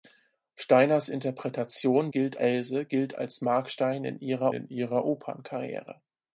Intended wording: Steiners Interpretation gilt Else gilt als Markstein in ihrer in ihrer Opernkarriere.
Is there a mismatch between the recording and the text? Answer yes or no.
no